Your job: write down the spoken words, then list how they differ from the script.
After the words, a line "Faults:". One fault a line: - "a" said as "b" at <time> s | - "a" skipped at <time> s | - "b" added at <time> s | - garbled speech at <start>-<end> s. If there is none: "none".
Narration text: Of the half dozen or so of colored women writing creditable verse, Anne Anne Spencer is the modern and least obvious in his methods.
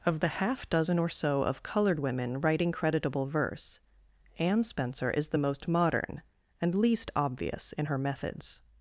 Of the half dozen or so of colored women writing creditable verse, Anne Spencer is the most modern and least obvious in her methods.
Faults:
- "Anne" skipped at 4.6 s
- "most" added at 5.4 s
- "his" said as "her" at 7.8 s